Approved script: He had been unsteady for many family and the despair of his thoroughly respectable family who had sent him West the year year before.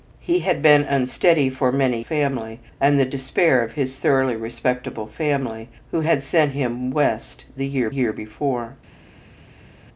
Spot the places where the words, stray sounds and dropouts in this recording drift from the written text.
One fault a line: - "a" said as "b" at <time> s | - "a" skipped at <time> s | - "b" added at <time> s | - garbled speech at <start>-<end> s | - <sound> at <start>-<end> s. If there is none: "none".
none